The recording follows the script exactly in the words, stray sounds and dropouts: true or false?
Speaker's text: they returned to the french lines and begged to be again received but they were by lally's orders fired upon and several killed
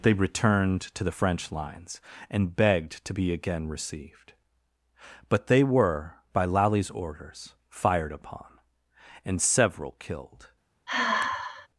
false